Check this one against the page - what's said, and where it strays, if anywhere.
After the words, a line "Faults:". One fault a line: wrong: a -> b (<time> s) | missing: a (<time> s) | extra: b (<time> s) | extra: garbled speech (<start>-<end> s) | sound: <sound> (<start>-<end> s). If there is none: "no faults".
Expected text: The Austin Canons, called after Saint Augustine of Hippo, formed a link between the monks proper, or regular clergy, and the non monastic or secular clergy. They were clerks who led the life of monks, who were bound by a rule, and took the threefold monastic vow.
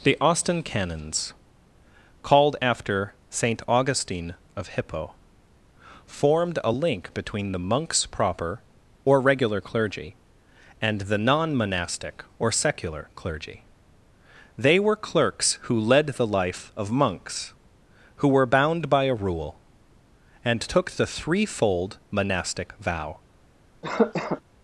The Austin Canons, called after Saint Augustine of Hippo, formed a link between the monks proper, or regular clergy, and the non monastic or secular clergy. They were clerks who led the life of monks, who were bound by a rule, and took the threefold monastic vow.
Faults:
sound: cough (23.8-24.4 s)